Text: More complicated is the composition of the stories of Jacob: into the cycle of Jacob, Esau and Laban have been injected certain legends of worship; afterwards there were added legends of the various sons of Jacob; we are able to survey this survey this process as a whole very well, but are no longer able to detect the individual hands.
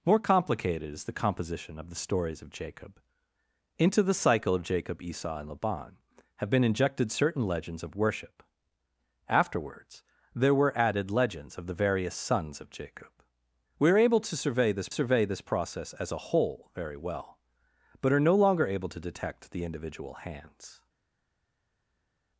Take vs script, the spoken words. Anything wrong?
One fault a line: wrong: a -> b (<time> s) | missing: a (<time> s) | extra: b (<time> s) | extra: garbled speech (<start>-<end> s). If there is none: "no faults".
no faults